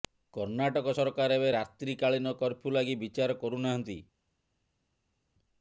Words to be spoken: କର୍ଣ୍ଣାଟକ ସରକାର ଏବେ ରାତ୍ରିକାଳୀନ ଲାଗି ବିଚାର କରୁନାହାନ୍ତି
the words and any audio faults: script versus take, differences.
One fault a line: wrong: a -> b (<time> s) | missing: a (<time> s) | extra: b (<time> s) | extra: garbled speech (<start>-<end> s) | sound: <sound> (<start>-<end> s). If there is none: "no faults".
extra: କର୍ଫ୍ୟୁ (2.4 s)